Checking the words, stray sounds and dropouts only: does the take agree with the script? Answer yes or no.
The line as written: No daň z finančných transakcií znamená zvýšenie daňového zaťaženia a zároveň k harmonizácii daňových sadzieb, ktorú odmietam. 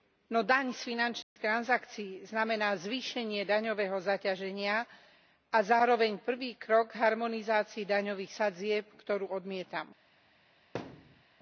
no